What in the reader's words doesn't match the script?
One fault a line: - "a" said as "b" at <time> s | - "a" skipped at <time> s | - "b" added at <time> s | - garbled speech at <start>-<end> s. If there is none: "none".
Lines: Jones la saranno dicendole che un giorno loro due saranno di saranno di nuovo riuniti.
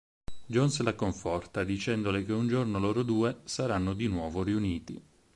- "saranno" said as "conforta" at 0.9 s
- "saranno di" skipped at 4.1 s